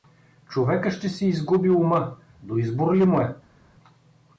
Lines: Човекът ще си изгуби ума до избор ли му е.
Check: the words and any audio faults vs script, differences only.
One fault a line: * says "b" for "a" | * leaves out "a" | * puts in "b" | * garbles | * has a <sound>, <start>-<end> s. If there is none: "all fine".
all fine